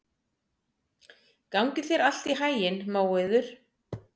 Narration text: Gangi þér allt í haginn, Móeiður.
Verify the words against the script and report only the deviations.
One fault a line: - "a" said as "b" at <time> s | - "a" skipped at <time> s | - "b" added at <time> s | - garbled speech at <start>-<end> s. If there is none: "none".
none